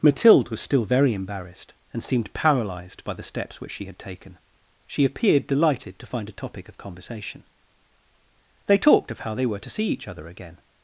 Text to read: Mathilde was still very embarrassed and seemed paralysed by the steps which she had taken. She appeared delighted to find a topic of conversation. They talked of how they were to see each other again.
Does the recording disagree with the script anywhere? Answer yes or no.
no